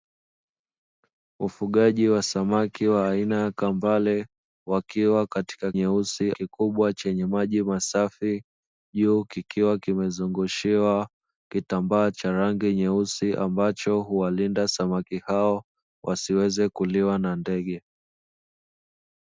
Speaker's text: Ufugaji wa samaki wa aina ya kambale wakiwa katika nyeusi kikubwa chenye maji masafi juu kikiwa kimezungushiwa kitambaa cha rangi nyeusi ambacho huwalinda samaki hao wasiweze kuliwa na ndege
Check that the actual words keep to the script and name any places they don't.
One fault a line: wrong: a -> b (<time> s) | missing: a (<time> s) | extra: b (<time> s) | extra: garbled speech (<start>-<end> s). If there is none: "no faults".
no faults